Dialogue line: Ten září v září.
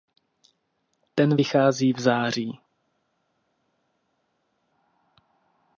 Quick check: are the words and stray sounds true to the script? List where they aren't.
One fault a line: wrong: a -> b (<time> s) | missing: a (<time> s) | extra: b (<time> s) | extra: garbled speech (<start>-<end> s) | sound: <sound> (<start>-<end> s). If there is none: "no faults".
wrong: září -> vychází (1.3 s)